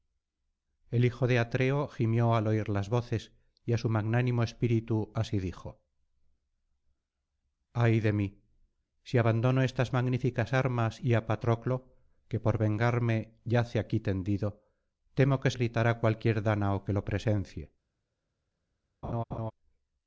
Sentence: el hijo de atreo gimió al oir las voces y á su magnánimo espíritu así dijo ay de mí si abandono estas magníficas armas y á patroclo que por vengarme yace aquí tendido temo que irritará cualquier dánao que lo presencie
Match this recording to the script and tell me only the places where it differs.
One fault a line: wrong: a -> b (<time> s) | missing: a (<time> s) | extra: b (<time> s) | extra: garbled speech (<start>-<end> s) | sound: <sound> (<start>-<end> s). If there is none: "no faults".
sound: laugh (19.0-19.5 s)